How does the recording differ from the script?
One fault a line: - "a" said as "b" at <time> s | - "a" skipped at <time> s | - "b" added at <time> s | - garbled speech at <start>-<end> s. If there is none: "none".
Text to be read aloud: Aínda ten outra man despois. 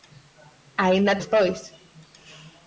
- "ten outra man" skipped at 1.2 s